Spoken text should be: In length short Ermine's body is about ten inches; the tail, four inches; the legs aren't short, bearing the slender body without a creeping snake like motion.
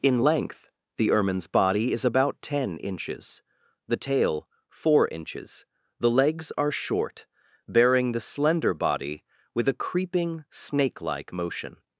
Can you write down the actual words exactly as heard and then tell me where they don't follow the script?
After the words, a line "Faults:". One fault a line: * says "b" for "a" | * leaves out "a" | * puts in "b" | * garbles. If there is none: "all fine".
In length the Ermine's body is about ten inches; the tail, four inches; the legs are short, bearing the slender body with a creeping snake like motion.
Faults:
* says "the" for "short"
* says "are" for "aren't"
* says "with" for "without"